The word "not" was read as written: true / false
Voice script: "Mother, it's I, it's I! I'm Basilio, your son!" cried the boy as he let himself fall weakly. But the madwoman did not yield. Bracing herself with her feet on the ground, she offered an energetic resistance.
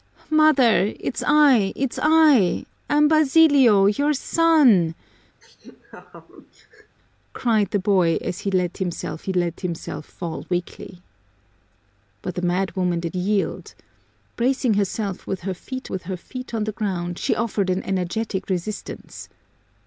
false